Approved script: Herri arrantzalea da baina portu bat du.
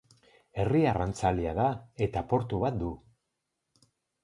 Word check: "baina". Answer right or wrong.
wrong